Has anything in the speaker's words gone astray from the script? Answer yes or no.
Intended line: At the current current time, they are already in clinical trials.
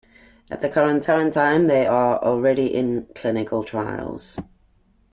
no